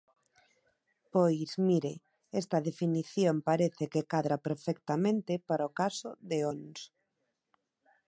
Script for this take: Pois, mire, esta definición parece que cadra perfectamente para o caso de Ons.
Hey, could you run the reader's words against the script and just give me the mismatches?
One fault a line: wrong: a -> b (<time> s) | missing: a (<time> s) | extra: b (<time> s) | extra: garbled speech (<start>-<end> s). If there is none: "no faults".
no faults